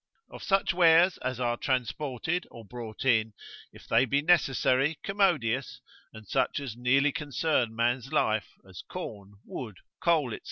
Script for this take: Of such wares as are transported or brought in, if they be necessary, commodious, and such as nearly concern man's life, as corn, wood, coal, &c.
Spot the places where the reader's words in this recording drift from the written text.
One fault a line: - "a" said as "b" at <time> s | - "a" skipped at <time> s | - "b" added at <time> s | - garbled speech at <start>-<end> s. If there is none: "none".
none